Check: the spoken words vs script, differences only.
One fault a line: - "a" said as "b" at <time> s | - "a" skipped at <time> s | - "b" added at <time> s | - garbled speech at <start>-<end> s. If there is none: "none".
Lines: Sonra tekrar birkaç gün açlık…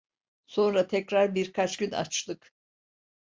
none